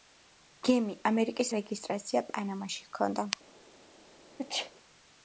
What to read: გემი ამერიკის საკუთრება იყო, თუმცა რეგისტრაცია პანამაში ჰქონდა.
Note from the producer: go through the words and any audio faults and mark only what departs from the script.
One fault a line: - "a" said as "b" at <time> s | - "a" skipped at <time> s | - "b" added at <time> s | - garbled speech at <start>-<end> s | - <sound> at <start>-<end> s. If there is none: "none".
- "საკუთრება იყო თუმცა" skipped at 1.5 s
- sneeze at 4.4-4.7 s